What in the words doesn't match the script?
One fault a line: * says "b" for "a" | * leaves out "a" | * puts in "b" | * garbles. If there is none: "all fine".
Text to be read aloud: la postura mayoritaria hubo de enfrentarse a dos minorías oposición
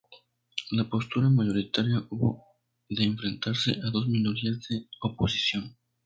* puts in "de"